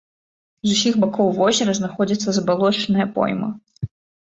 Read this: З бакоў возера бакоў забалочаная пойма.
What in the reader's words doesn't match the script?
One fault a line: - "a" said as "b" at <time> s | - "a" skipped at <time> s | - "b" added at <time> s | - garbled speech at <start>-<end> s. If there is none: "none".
- "усіх" added at 0.8 s
- "бакоў" said as "знаходзіцца" at 1.8 s